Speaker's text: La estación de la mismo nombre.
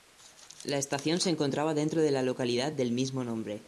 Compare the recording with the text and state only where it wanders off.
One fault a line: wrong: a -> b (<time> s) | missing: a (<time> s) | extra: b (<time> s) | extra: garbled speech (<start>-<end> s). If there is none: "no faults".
extra: se encontraba dentro (1.2 s)
extra: localidad del (2.2 s)